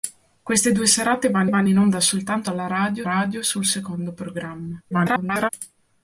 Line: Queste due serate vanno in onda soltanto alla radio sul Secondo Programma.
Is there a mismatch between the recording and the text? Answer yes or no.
yes